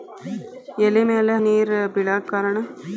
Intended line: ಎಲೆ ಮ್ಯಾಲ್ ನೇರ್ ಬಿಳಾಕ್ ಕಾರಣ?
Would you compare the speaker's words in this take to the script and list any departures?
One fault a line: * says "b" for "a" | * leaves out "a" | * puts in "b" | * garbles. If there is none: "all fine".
all fine